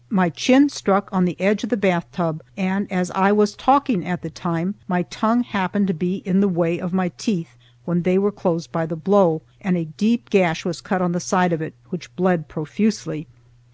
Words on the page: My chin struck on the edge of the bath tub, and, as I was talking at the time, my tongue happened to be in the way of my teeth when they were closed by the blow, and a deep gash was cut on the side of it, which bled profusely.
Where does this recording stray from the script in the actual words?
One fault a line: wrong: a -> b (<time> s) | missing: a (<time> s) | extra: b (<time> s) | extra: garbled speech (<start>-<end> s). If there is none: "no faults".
no faults